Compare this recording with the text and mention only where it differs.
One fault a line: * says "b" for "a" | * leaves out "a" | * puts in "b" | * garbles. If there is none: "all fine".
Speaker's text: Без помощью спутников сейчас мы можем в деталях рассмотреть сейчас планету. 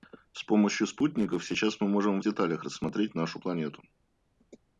* says "С" for "Без"
* says "нашу" for "сейчас"